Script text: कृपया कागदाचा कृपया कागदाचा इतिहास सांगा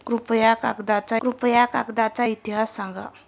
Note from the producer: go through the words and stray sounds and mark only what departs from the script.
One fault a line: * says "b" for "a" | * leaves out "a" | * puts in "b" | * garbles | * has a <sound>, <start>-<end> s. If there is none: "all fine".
all fine